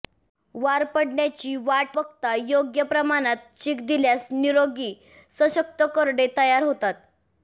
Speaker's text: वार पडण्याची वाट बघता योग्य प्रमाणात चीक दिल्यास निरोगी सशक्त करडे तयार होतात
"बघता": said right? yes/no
yes